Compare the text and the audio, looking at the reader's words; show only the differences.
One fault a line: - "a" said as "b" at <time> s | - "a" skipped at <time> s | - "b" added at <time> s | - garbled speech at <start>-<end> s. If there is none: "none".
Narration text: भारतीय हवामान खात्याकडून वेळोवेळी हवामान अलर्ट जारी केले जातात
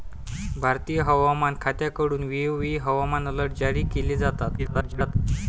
- garbled speech at 4.6-5.2 s